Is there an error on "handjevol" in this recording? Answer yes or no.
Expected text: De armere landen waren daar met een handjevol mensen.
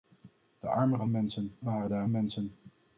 yes